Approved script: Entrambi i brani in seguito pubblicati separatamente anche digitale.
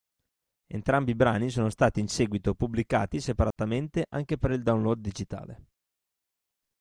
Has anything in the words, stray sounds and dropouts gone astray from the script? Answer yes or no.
yes